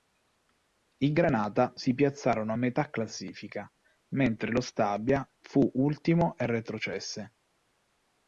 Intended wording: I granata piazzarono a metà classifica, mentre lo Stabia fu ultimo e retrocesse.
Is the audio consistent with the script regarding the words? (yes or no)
no